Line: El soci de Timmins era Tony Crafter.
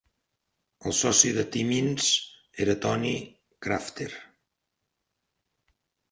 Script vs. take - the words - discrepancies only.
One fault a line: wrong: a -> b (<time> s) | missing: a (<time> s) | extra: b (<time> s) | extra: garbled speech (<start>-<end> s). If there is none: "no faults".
no faults